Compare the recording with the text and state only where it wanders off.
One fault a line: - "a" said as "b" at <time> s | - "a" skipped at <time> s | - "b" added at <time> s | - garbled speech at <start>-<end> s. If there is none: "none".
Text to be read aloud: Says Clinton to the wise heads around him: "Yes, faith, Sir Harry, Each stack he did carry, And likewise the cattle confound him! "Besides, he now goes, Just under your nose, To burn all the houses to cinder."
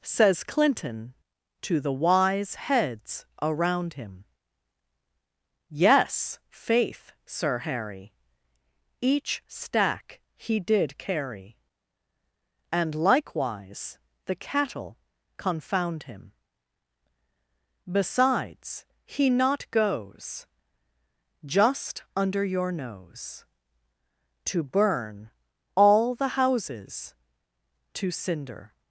- "now" said as "not" at 19.3 s